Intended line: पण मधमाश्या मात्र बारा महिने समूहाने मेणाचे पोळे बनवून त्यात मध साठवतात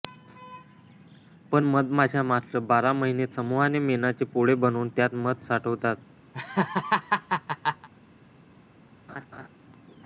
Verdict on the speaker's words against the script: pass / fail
pass